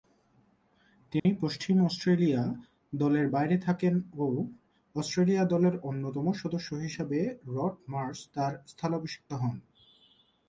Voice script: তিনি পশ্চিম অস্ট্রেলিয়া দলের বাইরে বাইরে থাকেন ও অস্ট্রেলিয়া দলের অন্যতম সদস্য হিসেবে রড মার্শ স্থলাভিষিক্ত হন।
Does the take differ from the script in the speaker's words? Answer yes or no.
yes